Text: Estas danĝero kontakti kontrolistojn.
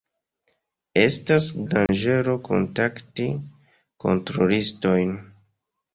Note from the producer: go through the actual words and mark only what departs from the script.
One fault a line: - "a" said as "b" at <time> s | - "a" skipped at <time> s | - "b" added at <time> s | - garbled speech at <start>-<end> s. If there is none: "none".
none